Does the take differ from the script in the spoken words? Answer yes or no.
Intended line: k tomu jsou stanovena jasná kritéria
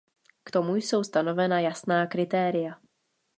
no